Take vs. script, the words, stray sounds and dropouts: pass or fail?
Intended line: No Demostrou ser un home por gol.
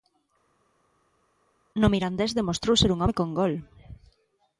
fail